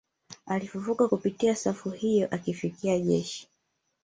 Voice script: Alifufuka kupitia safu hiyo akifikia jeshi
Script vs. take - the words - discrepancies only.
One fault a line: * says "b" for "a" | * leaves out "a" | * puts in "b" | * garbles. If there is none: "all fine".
all fine